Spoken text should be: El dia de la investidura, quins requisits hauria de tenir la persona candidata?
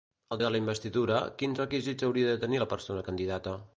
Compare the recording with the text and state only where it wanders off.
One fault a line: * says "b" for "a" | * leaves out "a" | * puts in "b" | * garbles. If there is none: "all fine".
* leaves out "dia"